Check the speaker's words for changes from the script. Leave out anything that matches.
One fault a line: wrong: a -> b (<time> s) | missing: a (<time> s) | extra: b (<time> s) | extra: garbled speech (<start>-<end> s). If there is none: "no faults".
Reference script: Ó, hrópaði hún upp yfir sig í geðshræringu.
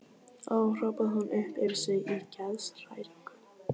no faults